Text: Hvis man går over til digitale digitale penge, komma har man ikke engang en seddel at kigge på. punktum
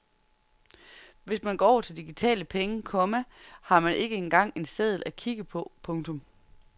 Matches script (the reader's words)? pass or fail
fail